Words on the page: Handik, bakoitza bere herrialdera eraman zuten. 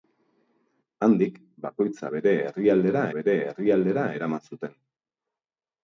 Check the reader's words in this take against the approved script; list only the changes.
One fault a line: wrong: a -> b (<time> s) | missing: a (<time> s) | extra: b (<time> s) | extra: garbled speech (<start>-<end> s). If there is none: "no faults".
extra: bere herrialdera (3.2 s)